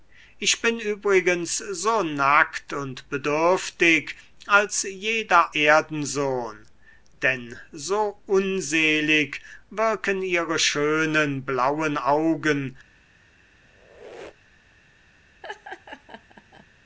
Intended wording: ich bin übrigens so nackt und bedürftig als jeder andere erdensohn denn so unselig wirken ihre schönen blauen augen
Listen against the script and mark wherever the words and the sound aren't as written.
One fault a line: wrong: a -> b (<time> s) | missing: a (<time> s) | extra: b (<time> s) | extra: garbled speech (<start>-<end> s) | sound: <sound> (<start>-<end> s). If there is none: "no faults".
missing: andere (5.5 s)
sound: squeak (13.6-14.8 s)
sound: laugh (15.4-16.7 s)